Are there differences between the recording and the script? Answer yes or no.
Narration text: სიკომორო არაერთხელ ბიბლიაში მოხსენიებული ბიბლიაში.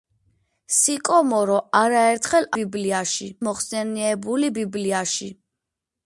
no